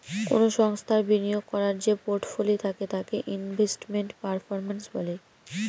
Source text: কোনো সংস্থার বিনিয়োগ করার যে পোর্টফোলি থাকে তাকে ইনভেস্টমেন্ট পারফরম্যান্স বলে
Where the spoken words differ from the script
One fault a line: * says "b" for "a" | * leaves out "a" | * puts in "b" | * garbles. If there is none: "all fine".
all fine